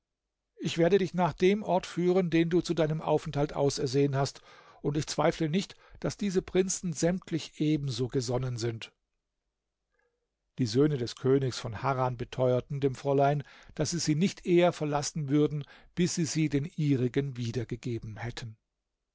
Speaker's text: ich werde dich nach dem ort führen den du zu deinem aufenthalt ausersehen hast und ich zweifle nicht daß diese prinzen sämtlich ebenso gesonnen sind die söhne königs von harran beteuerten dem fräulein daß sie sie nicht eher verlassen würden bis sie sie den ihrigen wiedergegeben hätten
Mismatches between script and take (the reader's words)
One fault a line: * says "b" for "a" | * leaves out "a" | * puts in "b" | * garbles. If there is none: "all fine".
* puts in "des"